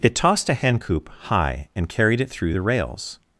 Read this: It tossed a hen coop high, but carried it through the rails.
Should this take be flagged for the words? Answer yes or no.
yes